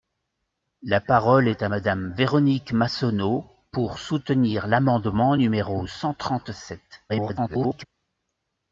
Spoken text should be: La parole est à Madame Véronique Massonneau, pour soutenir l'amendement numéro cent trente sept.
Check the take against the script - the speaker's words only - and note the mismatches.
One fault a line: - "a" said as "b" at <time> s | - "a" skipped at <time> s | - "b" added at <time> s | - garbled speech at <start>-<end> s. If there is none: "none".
- garbled speech at 7.1-7.9 s